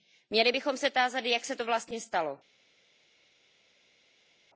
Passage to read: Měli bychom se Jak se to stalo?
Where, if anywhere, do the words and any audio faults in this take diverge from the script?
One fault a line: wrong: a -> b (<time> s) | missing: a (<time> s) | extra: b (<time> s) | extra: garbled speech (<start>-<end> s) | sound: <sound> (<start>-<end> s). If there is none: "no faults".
extra: tázat (0.9 s)
extra: vlastně (1.6 s)